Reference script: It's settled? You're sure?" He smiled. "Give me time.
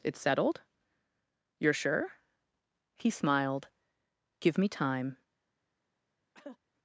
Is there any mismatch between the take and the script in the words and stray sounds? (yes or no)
yes